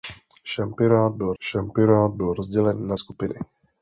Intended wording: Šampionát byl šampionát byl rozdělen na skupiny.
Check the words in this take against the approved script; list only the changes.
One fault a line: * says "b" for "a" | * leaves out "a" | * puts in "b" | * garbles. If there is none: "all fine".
all fine